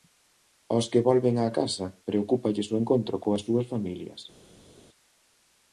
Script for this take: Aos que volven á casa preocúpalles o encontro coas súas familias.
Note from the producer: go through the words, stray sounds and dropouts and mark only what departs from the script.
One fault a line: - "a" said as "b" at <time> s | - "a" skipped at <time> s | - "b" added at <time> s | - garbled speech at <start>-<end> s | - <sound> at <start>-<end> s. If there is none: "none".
none